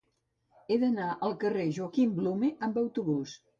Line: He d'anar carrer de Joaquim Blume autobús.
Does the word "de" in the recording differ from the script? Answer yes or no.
no